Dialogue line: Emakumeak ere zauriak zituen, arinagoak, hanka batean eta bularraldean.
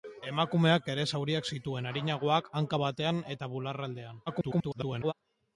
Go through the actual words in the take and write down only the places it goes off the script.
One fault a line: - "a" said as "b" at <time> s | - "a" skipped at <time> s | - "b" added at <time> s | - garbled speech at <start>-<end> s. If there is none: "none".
- garbled speech at 4.3-5.1 s